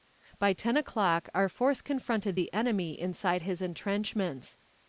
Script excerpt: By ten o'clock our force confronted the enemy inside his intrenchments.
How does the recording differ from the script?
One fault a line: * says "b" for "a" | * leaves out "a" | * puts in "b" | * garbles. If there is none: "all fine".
all fine